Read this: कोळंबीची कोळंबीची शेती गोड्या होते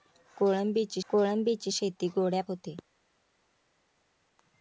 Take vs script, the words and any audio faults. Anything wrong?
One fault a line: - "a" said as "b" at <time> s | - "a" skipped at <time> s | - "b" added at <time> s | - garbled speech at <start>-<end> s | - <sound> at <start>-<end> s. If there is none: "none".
none